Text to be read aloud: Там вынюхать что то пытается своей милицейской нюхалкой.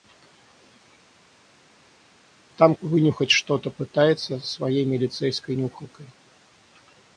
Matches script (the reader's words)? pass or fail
pass